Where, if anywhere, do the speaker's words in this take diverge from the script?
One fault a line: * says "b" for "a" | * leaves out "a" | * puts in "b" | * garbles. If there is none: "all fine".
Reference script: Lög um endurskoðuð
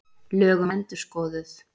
all fine